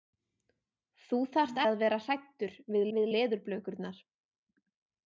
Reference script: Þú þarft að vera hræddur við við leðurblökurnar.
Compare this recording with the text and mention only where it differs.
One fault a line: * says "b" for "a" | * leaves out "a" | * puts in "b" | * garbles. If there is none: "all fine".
all fine